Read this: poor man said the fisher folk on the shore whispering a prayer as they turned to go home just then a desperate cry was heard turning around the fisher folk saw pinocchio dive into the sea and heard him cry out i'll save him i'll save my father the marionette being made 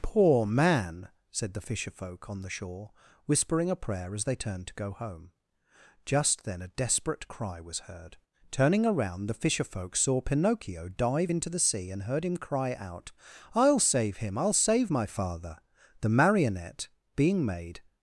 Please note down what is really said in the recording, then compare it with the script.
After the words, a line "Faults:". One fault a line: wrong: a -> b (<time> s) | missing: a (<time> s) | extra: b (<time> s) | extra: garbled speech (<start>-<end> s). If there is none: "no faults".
poor man said the fisher folk on the shore whispering a prayer as they turned to go home just then a desperate cry was heard turning around the fisher folk saw pinocchio dive into the sea and heard him cry out i'll save him i'll save my father the marionette being made
Faults:
no faults